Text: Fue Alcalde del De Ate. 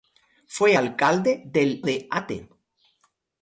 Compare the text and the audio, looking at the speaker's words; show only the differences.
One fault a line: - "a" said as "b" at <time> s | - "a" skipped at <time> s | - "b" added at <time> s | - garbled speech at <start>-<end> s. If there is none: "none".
none